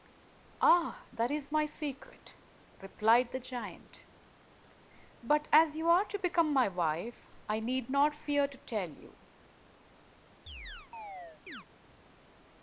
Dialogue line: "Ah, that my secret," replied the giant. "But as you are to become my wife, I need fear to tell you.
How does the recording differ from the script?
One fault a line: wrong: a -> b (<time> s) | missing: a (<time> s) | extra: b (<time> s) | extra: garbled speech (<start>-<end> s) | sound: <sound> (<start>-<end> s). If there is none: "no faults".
extra: is (1.3 s)
extra: not (7.9 s)
sound: chirp (10.5-11.7 s)